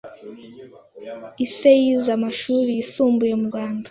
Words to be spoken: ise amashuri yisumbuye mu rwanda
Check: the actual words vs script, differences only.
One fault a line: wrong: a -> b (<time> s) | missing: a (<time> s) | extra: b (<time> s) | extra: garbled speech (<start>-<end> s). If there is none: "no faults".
extra: yize (1.8 s)